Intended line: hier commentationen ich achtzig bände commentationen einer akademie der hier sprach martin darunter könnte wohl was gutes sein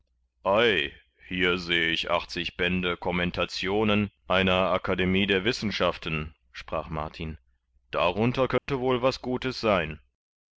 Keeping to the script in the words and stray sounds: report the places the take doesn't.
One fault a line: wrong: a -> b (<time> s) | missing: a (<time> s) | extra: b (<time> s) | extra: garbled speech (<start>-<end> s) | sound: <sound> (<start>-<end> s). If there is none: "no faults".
wrong: commentationen -> seh (1.6 s)
wrong: hier -> wissenschaften (5.5 s)
sound: dropout (8.6-8.7 s)